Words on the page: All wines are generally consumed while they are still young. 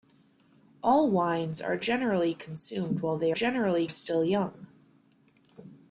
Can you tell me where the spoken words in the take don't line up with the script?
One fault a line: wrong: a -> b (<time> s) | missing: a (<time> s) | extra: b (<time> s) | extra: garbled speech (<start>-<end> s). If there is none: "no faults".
wrong: are -> generally (3.3 s)